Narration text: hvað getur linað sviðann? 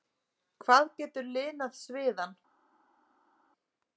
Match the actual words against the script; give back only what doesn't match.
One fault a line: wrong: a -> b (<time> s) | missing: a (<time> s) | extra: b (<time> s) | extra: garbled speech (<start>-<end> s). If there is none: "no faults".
no faults